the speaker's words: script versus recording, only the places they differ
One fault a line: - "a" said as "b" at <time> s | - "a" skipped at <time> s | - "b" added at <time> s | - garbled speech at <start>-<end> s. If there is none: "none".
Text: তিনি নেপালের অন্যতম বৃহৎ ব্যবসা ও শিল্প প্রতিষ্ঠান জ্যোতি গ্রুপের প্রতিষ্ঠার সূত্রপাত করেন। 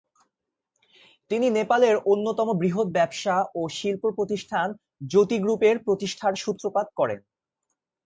none